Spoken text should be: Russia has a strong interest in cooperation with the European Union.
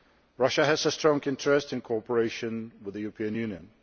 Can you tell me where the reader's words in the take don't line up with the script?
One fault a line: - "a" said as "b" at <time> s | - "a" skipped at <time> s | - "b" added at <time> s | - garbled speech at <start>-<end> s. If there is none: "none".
none